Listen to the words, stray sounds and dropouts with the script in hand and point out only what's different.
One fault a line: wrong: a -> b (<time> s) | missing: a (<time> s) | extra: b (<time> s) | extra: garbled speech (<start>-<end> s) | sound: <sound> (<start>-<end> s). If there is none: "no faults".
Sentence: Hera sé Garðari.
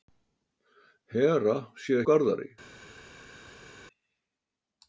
no faults